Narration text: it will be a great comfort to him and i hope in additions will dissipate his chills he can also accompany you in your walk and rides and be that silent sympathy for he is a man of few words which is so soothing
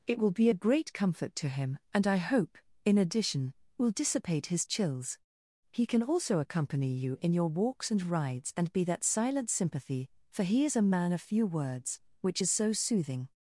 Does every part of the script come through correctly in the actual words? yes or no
no